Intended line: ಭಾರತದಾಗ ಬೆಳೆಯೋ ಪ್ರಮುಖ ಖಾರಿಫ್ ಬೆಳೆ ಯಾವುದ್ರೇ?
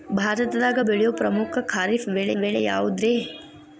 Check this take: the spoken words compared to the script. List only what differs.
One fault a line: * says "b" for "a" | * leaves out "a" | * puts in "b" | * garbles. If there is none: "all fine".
* puts in "ಬೆಳೆ"